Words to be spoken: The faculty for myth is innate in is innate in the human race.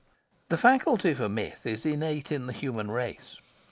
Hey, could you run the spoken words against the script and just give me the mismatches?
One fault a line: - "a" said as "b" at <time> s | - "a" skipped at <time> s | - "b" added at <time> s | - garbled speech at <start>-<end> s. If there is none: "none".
- "is innate in" skipped at 2.5 s